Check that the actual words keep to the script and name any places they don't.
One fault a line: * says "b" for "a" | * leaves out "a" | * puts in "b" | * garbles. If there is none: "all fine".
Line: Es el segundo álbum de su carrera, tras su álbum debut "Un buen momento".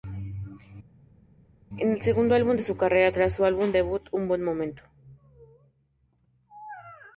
all fine